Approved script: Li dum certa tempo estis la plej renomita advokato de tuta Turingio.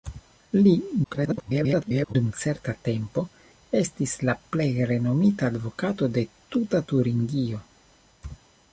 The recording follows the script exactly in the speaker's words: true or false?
false